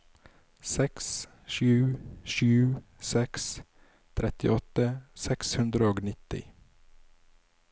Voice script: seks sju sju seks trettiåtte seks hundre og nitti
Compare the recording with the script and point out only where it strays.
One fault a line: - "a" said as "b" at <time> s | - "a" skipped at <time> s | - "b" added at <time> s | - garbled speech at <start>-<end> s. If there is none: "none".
none